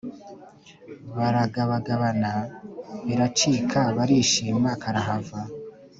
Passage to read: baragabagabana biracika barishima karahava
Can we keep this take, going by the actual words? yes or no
yes